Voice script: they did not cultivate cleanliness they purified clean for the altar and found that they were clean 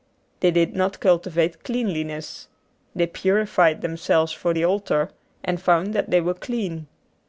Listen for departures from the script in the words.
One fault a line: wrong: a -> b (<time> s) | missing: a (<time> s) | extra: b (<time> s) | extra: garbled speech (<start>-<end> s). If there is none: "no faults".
wrong: clean -> themselves (3.8 s)